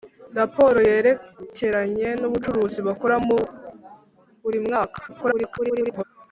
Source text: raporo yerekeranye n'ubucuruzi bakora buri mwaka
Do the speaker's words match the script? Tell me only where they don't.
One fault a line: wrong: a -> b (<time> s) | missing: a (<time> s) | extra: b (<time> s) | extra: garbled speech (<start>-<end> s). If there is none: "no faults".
extra: garbled speech (5.1-6.0 s)